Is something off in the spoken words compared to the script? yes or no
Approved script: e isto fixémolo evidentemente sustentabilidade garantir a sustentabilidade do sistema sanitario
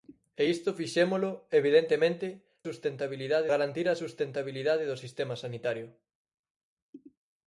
no